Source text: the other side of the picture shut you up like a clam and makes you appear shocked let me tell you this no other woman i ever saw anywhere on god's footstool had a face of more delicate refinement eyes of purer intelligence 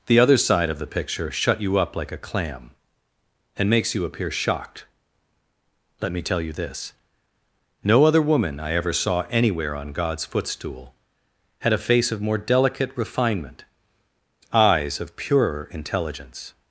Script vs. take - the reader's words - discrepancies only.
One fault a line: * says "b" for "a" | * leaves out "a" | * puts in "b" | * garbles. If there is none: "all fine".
all fine